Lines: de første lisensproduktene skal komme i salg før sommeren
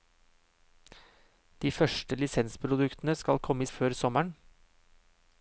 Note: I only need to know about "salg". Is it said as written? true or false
false